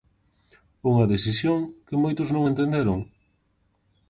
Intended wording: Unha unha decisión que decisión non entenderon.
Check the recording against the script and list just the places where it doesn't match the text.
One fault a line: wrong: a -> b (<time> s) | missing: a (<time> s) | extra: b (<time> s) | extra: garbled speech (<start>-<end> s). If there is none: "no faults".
missing: unha (1.1 s)
wrong: decisión -> moitos (2.0 s)